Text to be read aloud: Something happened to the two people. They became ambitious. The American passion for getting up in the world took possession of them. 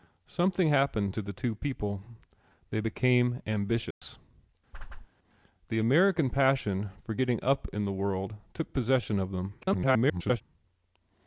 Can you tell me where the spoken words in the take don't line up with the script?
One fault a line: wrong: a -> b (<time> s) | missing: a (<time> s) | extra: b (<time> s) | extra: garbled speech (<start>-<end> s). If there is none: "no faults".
extra: garbled speech (9.6-10.4 s)